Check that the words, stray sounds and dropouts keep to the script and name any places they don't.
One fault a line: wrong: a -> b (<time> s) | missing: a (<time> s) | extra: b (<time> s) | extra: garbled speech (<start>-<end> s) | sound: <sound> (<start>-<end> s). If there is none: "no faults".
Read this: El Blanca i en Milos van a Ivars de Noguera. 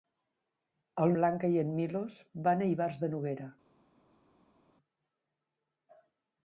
no faults